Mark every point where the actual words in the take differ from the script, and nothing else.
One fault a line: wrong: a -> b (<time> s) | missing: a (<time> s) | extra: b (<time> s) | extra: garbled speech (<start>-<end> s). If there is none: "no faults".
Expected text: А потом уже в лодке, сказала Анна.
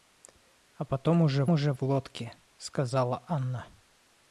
extra: уже (1.5 s)